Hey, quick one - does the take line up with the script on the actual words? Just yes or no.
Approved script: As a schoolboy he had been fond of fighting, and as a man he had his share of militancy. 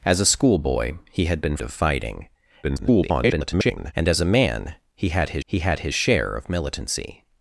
no